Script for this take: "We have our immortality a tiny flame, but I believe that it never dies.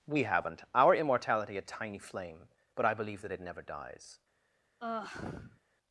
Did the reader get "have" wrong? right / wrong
wrong